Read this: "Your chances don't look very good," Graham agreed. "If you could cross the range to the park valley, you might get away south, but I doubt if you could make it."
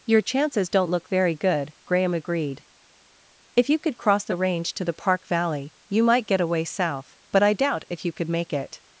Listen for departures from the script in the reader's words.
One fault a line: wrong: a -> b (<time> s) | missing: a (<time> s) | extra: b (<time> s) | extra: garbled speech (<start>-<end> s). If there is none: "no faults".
no faults